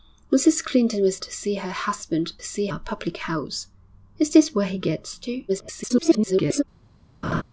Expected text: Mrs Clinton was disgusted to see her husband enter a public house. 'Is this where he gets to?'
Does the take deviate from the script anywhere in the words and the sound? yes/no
yes